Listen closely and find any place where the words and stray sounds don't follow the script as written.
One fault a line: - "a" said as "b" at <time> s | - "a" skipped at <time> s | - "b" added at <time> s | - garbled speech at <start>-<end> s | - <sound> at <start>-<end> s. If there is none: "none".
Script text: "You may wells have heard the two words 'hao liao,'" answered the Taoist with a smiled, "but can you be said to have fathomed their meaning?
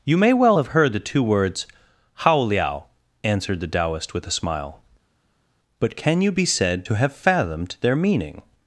- "wells" said as "well" at 0.3 s
- "smiled" said as "smile" at 4.4 s